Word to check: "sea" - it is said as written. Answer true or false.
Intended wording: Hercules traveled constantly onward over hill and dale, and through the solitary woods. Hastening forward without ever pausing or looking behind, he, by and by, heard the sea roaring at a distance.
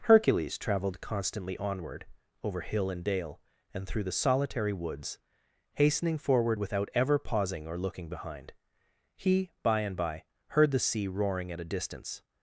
true